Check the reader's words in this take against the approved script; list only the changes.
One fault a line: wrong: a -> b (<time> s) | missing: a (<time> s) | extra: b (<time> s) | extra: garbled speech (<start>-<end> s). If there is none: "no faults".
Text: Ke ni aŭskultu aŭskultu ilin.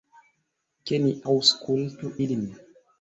missing: aŭskultu (2.1 s)